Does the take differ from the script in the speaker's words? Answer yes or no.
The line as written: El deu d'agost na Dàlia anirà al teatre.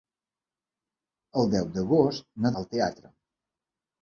yes